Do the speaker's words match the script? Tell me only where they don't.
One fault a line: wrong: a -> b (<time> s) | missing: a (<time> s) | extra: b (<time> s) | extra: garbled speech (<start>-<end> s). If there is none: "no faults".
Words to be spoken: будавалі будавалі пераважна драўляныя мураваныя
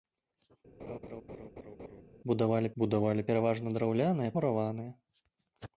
no faults